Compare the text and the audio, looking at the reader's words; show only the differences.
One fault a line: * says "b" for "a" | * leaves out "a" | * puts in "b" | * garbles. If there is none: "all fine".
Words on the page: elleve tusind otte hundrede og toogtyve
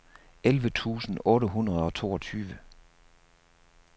all fine